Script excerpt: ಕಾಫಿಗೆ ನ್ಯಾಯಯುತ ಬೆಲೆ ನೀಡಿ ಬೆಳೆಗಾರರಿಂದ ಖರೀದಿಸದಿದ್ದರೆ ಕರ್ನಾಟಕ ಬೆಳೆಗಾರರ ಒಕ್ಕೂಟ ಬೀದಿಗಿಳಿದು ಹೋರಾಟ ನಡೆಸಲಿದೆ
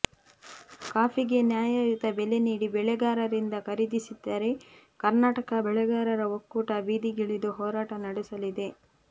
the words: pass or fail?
pass